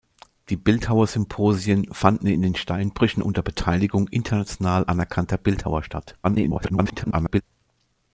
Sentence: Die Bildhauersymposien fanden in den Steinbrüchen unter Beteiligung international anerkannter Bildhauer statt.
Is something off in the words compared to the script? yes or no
yes